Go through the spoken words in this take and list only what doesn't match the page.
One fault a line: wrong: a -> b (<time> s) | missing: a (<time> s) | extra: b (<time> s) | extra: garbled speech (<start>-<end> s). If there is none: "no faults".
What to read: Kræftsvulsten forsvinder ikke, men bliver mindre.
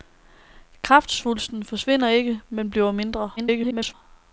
extra: garbled speech (3.4-3.9 s)